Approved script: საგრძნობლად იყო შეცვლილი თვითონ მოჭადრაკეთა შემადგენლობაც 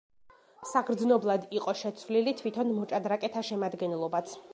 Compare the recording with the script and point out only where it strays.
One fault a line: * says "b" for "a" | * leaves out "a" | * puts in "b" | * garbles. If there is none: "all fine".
all fine